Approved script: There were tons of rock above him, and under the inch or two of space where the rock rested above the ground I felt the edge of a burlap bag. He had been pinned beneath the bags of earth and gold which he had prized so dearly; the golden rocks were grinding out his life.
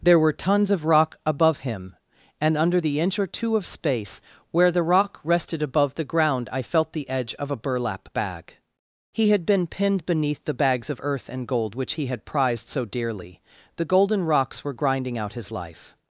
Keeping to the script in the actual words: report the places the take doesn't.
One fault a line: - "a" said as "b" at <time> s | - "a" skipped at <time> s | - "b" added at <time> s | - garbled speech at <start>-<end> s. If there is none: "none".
none